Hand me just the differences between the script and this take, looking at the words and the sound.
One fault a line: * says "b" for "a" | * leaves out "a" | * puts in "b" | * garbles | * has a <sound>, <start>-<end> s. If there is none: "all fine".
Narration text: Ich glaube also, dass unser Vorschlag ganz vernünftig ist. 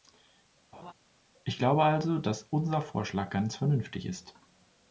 * has a laugh, 0.7-0.9 s